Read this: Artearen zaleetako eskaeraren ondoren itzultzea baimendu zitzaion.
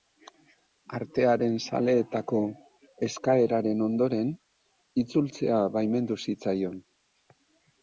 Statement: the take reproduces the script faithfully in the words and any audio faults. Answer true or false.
true